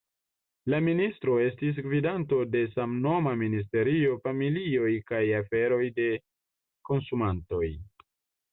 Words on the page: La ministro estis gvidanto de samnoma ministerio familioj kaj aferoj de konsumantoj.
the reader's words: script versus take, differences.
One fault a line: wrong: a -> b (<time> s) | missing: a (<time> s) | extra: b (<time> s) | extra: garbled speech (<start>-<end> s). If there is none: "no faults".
no faults